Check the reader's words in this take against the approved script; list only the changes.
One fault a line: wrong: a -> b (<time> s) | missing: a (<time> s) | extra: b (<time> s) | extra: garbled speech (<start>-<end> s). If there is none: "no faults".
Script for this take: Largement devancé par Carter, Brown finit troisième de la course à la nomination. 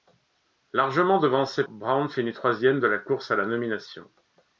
missing: par Carter (1.6 s)